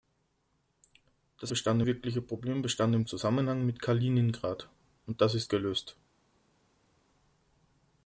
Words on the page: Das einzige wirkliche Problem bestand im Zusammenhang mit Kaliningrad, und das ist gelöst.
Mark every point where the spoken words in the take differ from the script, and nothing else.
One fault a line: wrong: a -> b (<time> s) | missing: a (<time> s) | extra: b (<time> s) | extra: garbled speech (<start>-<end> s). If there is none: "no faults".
wrong: einzige -> bestand (1.5 s)